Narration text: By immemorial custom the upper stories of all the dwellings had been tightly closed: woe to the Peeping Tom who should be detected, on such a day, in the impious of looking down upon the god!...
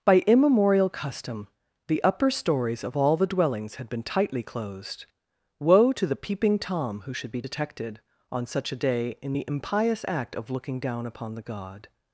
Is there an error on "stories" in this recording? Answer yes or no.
no